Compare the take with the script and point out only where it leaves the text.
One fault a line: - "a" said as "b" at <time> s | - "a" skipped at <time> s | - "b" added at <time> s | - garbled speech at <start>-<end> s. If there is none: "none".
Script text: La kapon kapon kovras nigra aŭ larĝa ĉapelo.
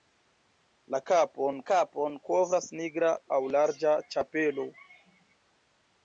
none